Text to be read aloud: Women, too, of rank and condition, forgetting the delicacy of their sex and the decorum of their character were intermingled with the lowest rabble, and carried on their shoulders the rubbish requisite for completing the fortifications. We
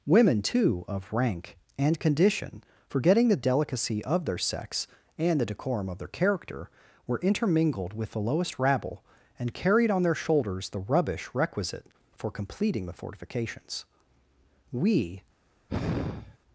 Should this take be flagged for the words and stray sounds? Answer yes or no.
yes